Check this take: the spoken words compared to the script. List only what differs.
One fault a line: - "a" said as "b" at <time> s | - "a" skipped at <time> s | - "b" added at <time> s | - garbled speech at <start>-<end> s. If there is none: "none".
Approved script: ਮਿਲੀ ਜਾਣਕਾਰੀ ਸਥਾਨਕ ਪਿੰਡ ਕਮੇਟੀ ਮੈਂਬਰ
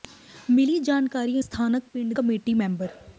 none